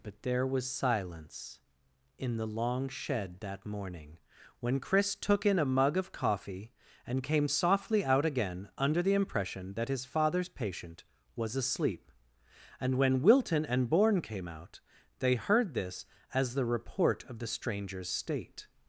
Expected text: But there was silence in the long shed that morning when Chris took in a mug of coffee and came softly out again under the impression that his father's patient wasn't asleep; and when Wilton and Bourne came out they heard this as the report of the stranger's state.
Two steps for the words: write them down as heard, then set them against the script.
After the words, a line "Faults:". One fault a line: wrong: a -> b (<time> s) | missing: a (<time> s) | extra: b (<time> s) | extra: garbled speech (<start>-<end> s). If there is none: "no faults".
But there was silence in the long shed that morning when Chris took in a mug of coffee and came softly out again under the impression that his father's patient was asleep; and when Wilton and Bourne came out they heard this as the report of the stranger's state.
Faults:
wrong: wasn't -> was (11.3 s)